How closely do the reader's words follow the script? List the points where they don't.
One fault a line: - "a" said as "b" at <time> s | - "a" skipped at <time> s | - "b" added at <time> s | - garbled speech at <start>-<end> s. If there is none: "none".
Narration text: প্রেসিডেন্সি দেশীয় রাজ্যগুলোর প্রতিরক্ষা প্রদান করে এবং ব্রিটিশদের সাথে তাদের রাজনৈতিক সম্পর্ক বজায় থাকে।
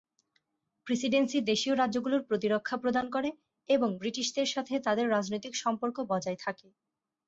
none